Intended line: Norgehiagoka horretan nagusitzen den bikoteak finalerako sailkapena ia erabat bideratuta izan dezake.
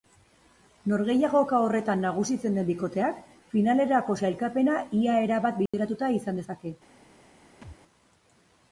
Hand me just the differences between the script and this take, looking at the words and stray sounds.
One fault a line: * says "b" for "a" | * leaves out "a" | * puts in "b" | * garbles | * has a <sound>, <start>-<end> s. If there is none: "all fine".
* has a dropout, 5.7-5.7 s
* has a thud, 7.6-7.8 s